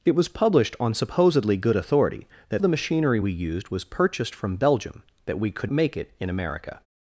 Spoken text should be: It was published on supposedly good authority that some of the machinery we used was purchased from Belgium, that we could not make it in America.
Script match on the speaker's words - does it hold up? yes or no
no